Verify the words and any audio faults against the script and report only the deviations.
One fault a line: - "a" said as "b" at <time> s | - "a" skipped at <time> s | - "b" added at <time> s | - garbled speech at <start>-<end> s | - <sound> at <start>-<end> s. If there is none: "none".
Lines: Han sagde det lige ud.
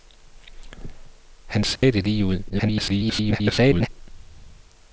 - dropout at 1.8-1.8 s
- garbled speech at 2.5-3.9 s